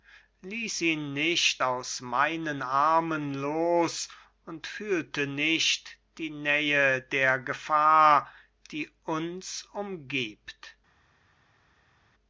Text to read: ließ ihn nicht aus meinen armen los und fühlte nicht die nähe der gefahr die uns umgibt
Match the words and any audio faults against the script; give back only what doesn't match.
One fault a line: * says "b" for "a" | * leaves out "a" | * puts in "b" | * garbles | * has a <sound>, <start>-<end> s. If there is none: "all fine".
all fine